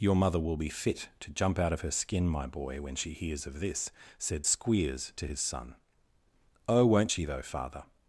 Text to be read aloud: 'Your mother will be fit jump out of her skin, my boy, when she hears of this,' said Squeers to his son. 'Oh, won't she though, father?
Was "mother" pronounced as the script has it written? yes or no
yes